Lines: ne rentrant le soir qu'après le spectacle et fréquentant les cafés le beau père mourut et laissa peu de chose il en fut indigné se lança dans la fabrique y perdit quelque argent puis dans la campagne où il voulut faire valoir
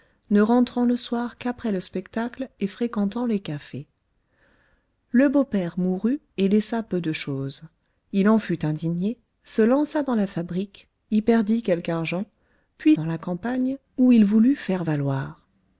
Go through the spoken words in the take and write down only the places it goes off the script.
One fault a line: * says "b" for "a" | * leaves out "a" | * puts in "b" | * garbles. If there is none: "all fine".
all fine